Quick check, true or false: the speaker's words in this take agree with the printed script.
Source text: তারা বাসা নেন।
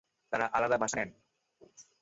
false